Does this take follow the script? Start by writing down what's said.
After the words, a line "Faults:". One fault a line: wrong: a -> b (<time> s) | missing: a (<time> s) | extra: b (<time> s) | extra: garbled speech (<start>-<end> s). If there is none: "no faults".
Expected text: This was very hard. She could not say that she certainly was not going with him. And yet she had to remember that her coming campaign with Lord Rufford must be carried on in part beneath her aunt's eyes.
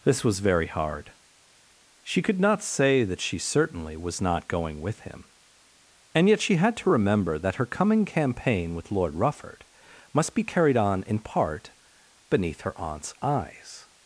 This was very hard. She could not say that she certainly was not going with him. And yet she had to remember that her coming campaign with Lord Rufford must be carried on in part beneath her aunt's eyes.
Faults:
no faults